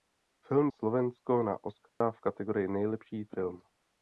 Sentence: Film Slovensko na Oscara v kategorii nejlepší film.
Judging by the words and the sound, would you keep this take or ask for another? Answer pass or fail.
fail